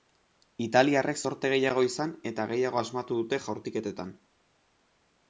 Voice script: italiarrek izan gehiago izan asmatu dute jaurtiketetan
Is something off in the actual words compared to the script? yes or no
yes